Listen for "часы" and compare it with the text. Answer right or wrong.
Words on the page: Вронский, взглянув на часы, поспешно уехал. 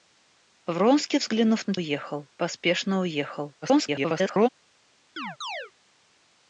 wrong